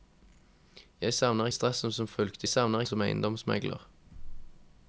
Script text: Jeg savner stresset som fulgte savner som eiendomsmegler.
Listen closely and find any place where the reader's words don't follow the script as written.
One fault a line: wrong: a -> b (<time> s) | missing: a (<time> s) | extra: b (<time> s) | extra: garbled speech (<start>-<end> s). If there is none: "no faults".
no faults